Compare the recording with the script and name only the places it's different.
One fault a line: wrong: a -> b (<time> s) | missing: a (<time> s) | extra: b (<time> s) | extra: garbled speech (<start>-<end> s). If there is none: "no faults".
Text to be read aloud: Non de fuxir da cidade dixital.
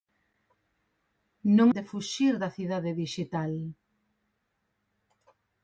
no faults